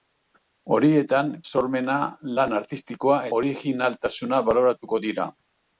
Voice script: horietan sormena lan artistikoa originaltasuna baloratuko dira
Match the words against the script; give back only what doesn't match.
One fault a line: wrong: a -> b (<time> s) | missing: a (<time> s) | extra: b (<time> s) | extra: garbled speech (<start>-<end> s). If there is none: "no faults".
no faults